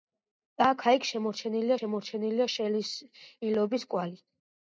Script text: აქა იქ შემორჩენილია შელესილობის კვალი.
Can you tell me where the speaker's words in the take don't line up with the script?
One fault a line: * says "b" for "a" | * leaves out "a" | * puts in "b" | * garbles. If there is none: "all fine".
* puts in "შემორჩენილია"